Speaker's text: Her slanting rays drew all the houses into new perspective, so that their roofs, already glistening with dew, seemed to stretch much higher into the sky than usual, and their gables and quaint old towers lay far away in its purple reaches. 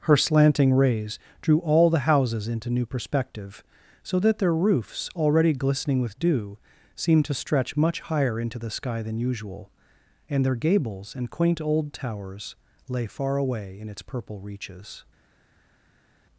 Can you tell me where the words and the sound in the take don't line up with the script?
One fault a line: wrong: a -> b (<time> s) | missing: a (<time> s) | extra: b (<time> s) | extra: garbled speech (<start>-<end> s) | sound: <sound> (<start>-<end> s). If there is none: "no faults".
no faults